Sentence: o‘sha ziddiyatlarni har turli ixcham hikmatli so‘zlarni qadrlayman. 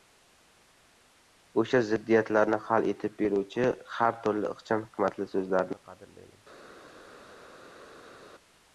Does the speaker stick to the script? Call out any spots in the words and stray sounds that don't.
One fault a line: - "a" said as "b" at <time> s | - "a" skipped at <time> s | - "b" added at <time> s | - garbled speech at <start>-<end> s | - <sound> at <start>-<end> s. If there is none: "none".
- "hal etib beruvchi" added at 2.7 s